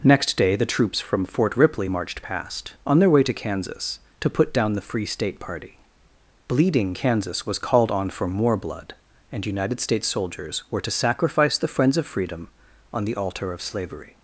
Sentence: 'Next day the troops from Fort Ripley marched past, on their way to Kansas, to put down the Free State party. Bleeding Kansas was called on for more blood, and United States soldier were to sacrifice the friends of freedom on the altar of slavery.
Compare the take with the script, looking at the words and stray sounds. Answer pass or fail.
fail